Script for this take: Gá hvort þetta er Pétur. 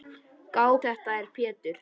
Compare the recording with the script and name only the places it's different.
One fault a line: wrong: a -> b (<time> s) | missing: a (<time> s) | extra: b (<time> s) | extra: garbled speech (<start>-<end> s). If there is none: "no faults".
missing: hvort (0.7 s)